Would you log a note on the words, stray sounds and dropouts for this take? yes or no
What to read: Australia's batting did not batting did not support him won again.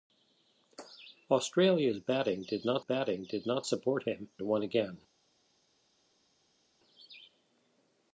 no